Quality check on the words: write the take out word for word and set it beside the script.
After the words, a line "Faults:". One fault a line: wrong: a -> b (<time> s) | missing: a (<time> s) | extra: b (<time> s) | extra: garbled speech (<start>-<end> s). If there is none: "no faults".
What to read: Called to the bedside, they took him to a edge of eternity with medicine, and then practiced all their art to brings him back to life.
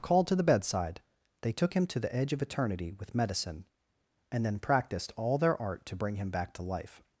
Called to the bedside, they took him to the edge of eternity with medicine, and then practiced all their art to bring him back to life.
Faults:
wrong: a -> the (2.0 s)
wrong: brings -> bring (6.0 s)